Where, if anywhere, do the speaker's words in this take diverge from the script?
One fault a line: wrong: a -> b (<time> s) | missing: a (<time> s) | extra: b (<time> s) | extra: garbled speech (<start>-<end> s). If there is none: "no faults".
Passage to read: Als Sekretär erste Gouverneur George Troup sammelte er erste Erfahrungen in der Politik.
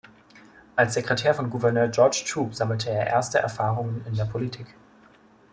wrong: erste -> von (1.3 s)